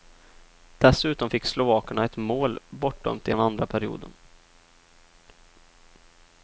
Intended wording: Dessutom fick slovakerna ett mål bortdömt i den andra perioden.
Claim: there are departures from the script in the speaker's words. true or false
false